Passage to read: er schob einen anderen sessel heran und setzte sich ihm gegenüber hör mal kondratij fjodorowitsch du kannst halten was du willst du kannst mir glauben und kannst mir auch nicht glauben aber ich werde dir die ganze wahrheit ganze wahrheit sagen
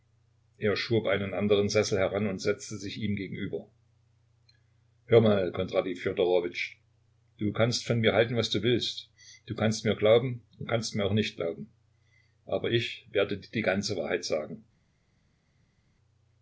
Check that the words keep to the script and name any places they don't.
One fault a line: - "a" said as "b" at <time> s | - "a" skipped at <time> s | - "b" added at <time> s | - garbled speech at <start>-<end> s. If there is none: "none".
- "von mir" added at 7.9 s
- "ganze wahrheit" skipped at 14.2 s